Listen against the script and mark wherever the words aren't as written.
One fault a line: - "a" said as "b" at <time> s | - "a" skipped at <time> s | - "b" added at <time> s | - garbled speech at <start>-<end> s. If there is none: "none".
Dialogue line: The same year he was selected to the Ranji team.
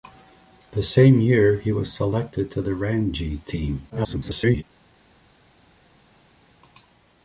- garbled speech at 3.9-4.6 s